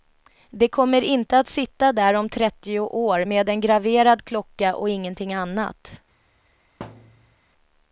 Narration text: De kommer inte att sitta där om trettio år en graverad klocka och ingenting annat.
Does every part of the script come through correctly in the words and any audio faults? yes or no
no